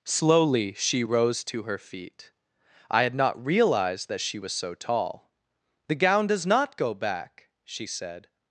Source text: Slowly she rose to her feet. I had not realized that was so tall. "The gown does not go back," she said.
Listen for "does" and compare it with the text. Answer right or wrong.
right